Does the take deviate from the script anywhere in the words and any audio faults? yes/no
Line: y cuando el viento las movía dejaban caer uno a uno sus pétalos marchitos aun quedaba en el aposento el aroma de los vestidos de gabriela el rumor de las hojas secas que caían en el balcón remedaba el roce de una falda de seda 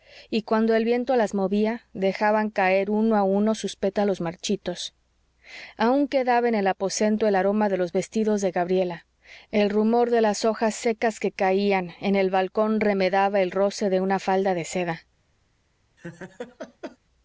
yes